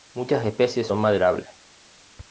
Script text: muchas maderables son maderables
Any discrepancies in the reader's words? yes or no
yes